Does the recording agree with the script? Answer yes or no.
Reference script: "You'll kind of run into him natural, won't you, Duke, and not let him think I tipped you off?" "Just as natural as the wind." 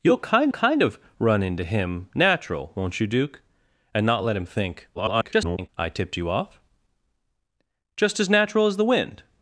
no